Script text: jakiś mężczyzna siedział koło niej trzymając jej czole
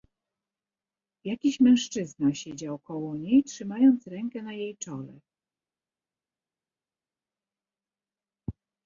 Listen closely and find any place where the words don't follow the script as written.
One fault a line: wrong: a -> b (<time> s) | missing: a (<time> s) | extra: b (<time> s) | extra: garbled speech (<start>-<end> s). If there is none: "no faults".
extra: rękę na (4.1 s)